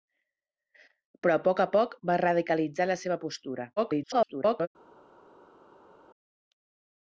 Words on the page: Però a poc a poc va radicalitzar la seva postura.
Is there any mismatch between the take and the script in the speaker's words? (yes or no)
yes